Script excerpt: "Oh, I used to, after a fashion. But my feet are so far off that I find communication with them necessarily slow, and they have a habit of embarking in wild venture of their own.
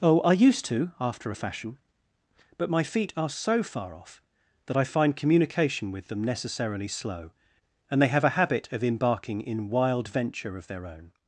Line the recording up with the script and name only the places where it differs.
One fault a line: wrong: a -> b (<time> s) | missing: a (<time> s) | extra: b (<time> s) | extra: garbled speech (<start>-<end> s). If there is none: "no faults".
no faults